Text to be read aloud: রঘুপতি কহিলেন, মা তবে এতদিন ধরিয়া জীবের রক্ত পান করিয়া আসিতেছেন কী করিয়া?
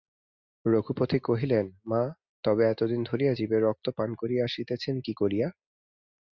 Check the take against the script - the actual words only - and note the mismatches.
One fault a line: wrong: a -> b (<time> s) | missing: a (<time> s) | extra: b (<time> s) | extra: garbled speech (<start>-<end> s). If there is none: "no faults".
no faults